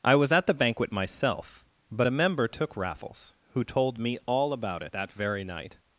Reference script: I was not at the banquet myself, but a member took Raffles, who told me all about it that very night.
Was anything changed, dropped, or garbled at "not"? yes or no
yes